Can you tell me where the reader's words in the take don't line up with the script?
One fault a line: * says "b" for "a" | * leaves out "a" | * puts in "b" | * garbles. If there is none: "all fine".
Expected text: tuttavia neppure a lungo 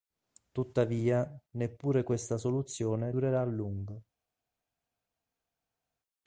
* puts in "questa soluzione durerà"